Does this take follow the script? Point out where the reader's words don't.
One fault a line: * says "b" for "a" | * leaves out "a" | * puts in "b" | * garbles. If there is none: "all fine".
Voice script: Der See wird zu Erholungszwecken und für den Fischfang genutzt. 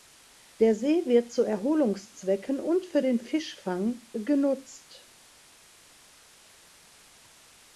all fine